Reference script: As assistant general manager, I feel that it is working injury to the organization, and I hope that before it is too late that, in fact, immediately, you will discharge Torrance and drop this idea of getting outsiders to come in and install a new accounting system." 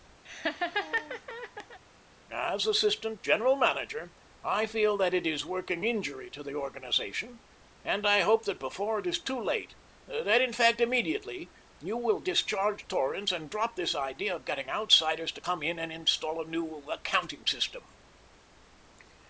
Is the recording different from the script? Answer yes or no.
no